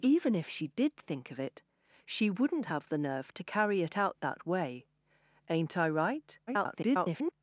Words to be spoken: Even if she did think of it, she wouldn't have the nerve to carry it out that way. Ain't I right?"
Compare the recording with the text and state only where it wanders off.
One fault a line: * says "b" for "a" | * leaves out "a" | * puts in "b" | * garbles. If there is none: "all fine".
* garbles